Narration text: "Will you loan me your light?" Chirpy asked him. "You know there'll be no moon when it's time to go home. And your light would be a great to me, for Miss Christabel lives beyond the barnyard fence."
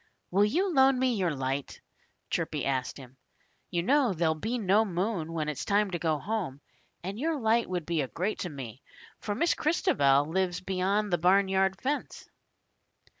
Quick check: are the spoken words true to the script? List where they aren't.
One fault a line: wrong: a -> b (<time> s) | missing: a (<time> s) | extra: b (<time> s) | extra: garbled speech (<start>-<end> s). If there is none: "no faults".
no faults